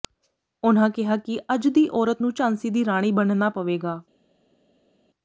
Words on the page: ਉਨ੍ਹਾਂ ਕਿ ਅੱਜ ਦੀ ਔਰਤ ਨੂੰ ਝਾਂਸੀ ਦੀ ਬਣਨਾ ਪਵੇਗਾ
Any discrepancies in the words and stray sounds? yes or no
yes